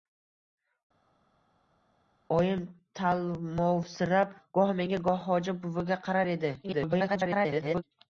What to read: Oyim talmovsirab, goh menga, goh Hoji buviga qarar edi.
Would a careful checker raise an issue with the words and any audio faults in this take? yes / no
yes